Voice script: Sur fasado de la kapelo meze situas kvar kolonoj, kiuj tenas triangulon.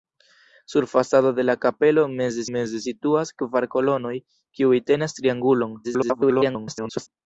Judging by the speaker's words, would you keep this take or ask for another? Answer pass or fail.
fail